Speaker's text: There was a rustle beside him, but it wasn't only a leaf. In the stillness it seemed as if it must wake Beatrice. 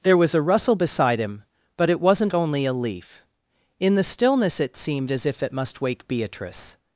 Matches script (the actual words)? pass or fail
pass